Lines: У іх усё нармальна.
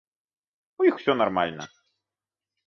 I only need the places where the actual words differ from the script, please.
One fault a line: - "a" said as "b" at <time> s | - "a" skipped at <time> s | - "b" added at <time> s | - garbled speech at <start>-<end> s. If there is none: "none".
none